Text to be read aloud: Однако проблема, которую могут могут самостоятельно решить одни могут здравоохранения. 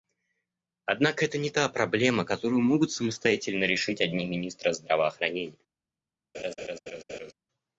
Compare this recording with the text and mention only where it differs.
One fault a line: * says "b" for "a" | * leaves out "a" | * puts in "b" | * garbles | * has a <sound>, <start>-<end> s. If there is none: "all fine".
* puts in "это не та"
* leaves out "могут"
* says "министры" for "могут"
* has a laugh, 6.3-7.3 s